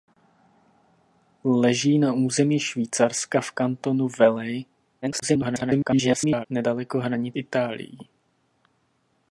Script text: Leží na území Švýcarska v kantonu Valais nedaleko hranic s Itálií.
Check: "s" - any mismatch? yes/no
yes